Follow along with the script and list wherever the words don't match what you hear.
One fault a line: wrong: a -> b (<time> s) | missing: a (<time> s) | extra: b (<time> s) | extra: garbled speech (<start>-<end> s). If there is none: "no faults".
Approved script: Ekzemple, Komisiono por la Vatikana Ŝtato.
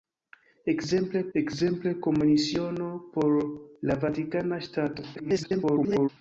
extra: ekzemple (1.4 s)
extra: garbled speech (5.1-6.1 s)